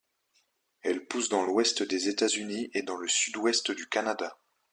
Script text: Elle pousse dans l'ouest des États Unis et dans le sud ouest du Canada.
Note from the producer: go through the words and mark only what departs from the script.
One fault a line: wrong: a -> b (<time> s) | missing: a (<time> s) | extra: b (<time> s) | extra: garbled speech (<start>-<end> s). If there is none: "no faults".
no faults